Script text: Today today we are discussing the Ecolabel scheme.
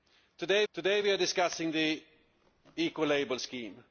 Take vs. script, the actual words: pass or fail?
pass